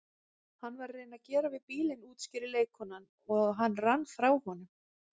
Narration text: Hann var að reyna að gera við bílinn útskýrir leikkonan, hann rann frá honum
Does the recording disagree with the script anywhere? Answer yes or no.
yes